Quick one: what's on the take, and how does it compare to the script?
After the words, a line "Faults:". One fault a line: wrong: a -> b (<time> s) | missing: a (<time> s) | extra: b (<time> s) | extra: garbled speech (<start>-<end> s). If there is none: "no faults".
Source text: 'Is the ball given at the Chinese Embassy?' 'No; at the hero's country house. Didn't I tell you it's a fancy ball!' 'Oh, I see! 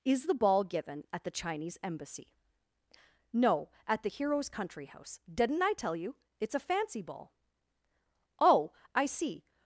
'Is the ball given at the Chinese Embassy?' 'No; at the hero's country house. Didn't I tell you it's a fancy ball!' 'Oh, I see!
Faults:
no faults